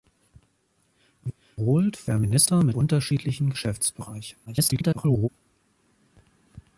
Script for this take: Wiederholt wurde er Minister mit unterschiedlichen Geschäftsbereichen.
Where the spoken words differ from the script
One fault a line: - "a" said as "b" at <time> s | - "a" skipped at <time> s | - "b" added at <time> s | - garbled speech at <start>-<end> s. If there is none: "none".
- "wurde" skipped at 2.1 s
- garbled speech at 4.5-5.3 s